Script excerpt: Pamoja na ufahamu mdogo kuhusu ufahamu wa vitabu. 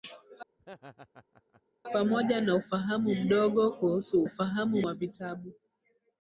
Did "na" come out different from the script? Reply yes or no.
no